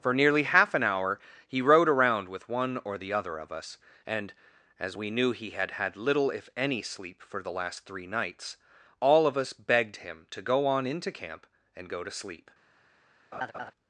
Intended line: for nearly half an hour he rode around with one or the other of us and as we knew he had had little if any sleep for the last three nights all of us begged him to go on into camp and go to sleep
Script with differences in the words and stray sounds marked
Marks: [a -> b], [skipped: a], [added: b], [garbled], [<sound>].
for nearly half an hour he rode around with one or the other of us and as we knew he had had little if any sleep for the last three nights all of us begged him to go on into camp and go to sleep [laugh]